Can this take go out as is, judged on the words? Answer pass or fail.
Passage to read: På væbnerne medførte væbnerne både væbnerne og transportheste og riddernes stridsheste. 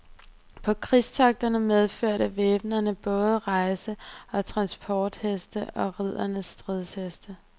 fail